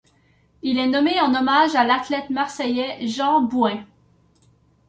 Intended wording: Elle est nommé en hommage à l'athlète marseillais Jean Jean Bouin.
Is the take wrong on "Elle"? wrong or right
wrong